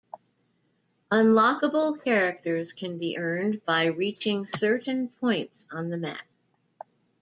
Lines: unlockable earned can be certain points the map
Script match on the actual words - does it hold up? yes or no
no